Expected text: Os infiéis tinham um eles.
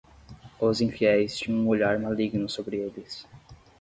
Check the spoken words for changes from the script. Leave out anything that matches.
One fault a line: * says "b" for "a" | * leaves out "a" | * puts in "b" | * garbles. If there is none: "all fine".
* puts in "olhar maligno sobre"